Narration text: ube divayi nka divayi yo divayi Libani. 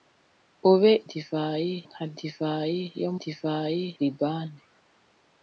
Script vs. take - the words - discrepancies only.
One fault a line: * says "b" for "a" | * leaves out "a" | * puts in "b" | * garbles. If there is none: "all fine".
all fine